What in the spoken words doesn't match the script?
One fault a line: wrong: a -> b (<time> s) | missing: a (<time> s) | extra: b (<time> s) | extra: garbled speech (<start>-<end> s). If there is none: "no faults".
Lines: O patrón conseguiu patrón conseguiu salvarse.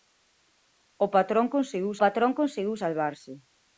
no faults